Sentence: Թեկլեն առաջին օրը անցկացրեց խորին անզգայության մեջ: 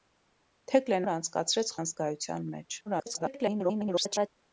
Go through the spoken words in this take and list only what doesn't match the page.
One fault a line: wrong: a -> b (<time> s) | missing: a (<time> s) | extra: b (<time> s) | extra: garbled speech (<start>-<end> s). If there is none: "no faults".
missing: առաջին (1.1 s)
missing: խորին (1.7 s)
extra: garbled speech (2.9-4.3 s)